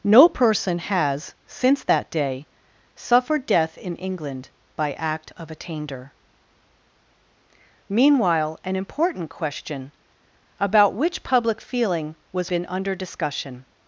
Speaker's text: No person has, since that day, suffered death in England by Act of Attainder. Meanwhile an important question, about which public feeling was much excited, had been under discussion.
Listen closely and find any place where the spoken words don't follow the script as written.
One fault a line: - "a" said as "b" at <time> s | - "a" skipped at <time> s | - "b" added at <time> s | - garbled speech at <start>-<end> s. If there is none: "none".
- "much excited had" skipped at 12.5 s